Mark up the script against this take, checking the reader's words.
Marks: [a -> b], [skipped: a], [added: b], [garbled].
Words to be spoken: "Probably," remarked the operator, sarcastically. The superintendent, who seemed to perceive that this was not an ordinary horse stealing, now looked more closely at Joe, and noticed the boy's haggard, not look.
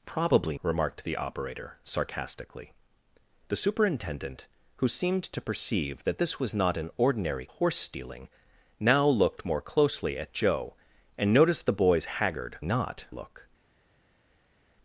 "Probably," remarked the operator, sarcastically. The superintendent, who seemed to perceive that this was not an ordinary horse stealing, now looked more closely at Joe, and noticed the boy's haggard, not look.